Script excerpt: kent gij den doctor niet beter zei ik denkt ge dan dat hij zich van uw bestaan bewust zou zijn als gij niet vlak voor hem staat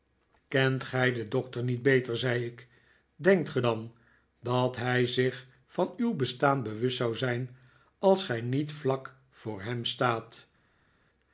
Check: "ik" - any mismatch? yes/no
no